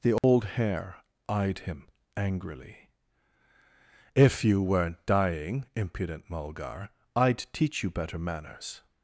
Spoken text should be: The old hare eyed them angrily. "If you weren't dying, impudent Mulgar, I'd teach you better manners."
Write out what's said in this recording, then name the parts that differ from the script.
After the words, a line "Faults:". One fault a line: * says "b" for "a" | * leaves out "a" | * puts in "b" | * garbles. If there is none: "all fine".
The old hare eyed him angrily. "If you weren't dying, impudent Mulgar, I'd teach you better manners."
Faults:
* says "him" for "them"